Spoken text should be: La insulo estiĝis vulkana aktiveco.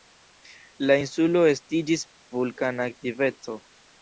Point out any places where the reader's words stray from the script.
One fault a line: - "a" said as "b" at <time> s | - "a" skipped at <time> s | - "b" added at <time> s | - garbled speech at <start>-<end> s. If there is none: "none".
none